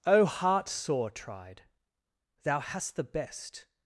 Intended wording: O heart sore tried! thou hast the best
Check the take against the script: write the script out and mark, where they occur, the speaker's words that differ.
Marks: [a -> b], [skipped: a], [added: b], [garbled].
O heart sore tried! thou hast the best